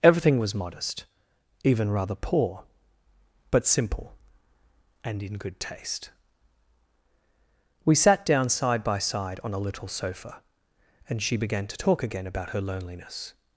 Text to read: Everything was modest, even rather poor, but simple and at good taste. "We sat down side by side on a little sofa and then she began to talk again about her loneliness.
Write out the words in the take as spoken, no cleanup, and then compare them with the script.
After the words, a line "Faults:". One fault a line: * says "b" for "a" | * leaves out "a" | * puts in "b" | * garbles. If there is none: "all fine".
Everything was modest, even rather poor, but simple and in good taste. "We sat down side by side on a little sofa and she began to talk again about her loneliness.
Faults:
* says "in" for "at"
* leaves out "then"